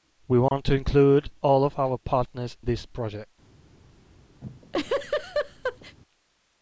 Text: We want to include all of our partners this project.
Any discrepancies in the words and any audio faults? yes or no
yes